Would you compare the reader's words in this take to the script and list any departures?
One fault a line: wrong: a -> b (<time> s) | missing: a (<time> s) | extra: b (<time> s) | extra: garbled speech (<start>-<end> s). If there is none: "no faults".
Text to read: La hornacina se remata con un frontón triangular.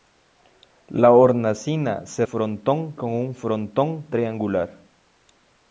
wrong: remata -> frontón (2.2 s)